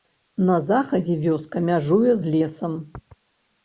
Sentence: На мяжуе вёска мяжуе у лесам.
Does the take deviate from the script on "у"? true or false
true